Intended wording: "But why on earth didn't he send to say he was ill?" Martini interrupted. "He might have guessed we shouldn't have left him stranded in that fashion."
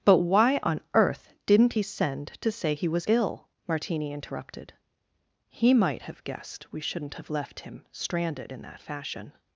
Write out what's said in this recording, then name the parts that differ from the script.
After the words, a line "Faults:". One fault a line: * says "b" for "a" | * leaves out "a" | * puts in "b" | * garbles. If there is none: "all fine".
"But why on earth didn't he send to say he was ill?" Martini interrupted. "He might have guessed we shouldn't have left him stranded in that fashion."
Faults:
all fine